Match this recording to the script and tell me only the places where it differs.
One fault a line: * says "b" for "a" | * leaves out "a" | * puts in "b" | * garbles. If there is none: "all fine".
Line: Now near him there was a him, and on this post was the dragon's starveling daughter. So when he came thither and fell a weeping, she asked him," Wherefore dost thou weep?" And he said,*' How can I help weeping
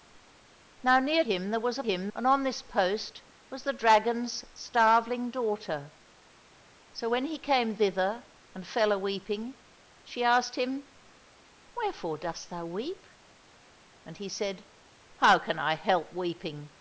all fine